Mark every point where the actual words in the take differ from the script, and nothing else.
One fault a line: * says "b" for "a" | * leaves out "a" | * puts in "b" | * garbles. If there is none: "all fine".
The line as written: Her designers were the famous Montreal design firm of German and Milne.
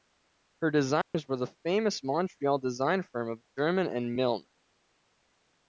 all fine